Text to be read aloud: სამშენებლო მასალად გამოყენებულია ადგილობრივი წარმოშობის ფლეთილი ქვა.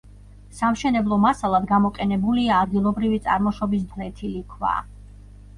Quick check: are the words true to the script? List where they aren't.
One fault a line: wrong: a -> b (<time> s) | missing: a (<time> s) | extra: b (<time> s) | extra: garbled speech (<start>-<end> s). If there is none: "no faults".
no faults